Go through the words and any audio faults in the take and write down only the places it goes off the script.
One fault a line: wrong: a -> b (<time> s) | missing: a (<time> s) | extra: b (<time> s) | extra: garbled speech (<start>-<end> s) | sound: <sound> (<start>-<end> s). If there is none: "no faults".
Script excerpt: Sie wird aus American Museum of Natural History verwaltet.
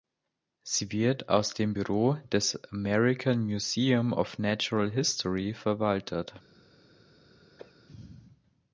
extra: dem Büro des (1.5 s)
sound: cough (7.6-7.7 s)